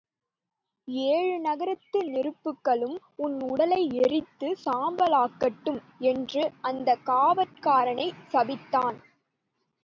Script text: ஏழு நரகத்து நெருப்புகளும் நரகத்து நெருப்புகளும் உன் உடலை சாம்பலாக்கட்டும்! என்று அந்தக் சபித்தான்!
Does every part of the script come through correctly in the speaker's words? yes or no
no